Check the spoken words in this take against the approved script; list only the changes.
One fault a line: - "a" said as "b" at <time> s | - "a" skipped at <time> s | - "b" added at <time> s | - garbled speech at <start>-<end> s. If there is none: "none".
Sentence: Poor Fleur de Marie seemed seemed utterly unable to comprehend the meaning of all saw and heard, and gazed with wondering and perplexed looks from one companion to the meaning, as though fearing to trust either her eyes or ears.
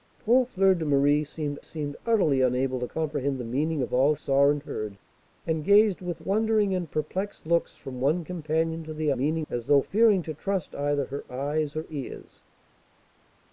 none